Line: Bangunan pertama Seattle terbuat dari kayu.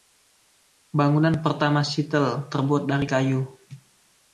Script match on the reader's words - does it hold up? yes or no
yes